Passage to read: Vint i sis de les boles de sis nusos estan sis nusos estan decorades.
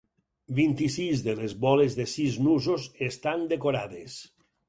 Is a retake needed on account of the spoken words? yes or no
yes